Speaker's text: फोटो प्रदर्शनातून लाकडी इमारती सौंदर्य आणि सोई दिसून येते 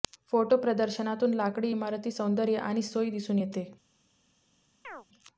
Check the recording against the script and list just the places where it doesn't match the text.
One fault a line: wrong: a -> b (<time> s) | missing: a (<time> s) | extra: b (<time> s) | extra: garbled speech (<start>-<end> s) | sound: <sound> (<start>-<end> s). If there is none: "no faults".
sound: chirp (4.8-5.0 s)